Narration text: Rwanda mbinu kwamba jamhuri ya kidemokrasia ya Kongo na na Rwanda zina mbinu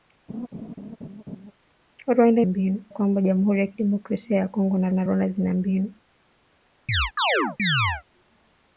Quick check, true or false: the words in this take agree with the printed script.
true